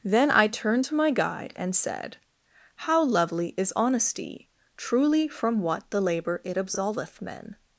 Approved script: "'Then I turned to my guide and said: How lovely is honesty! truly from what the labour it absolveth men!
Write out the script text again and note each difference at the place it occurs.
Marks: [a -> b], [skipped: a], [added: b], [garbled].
"'Then I turned to my guide and said: How lovely is honesty! truly from what the labour it absolveth men!